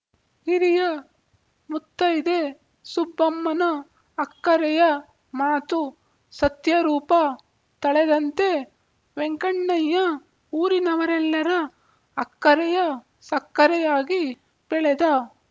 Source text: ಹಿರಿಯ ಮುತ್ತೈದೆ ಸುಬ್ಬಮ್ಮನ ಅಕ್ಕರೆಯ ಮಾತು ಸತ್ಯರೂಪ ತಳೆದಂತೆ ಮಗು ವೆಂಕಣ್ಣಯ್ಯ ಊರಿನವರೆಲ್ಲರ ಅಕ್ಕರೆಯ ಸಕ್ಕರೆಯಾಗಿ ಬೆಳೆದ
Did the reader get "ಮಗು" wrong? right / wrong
wrong